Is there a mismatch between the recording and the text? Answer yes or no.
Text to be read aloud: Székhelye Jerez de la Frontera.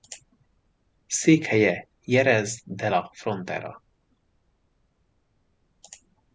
no